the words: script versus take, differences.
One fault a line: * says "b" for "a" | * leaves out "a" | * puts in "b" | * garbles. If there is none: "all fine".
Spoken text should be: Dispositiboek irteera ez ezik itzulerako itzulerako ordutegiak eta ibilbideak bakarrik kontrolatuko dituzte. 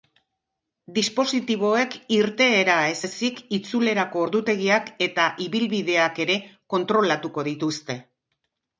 * leaves out "itzulerako"
* says "ere" for "bakarrik"